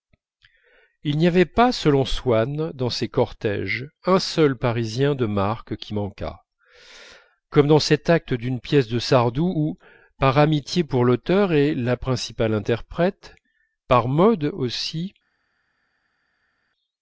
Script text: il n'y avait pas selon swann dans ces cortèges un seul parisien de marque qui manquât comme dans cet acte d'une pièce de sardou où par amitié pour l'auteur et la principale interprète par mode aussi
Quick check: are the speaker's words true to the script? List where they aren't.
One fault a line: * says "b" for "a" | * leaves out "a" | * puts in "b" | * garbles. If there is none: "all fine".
all fine